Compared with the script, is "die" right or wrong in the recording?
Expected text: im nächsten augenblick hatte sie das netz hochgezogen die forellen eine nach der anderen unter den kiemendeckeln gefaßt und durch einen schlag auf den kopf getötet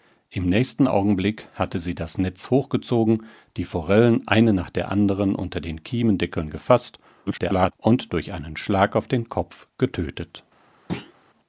right